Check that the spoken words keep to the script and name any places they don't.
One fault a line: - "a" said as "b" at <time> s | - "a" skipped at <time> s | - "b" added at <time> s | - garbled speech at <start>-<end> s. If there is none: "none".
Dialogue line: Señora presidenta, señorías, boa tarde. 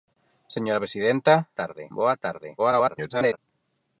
- "señorías" said as "tarde" at 1.6 s
- garbled speech at 2.6-3.4 s